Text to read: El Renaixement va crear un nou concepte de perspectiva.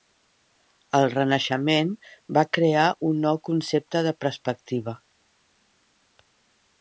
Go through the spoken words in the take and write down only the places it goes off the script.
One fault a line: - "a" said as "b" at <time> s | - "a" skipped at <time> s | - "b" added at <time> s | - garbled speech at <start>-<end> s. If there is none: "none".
none